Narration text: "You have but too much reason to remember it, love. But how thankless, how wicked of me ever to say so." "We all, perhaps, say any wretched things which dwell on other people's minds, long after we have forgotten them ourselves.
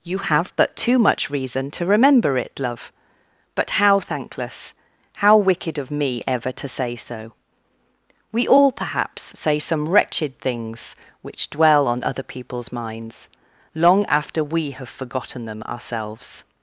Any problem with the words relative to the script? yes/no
yes